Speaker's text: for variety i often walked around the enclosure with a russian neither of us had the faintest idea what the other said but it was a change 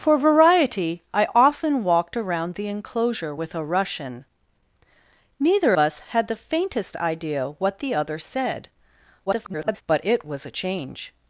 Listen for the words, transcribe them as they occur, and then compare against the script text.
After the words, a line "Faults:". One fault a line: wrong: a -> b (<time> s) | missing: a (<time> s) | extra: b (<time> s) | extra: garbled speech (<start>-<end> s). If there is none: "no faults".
for variety i often walked around the enclosure with a russian neither us had the faintest idea what the other said [garbled] but it was a change
Faults:
missing: of (5.7 s)
extra: garbled speech (9.3-9.8 s)